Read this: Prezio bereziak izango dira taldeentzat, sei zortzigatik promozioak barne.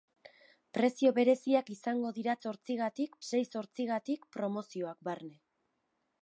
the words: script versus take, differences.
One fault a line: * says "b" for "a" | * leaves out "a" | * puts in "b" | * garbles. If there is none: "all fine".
* says "zortzigatik" for "taldeentzat"